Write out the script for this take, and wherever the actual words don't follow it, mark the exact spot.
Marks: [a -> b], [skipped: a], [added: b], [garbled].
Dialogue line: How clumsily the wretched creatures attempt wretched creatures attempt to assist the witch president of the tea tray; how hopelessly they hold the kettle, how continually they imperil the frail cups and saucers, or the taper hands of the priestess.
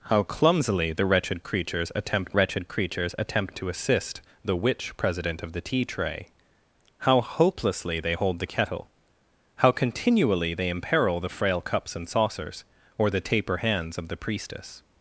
How clumsily the wretched creatures attempt wretched creatures attempt to assist the witch president of the tea tray; how hopelessly they hold the kettle, how continually they imperil the frail cups and saucers, or the taper hands of the priestess.